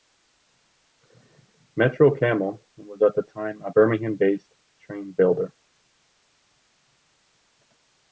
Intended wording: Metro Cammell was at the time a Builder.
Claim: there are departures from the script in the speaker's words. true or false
true